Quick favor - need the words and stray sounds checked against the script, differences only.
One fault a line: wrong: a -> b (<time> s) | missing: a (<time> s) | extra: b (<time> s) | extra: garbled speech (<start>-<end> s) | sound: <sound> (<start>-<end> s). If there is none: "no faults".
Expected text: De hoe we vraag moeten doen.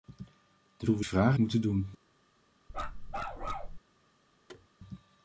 sound: bark (2.7-3.8 s)
sound: thud (4.5-4.7 s)